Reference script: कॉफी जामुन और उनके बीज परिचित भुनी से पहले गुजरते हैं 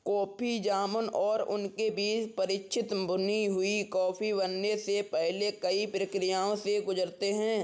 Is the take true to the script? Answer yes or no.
no